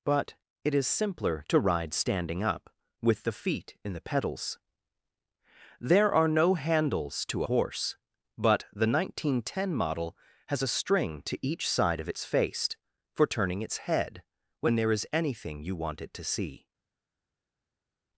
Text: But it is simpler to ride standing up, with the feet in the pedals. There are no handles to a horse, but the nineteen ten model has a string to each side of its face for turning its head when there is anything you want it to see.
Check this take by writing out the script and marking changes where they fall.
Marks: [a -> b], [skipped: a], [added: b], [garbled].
But it is simpler to ride standing up, with the feet in the pedals. There are no handles to [skipped: a] horse, but the nineteen ten model has a string to each side of its face for turning its head when there is anything you want it to see.